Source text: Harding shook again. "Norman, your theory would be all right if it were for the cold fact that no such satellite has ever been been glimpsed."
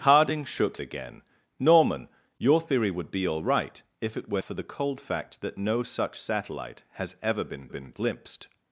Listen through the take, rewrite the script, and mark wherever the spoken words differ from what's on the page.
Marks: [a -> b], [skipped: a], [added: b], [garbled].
Harding shook again. "Norman, your theory would be all right if it were for the cold fact that no such satellite has ever been been glimpsed."